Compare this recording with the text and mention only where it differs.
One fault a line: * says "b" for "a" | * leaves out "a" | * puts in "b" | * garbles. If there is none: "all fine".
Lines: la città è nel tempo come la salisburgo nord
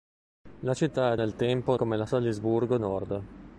all fine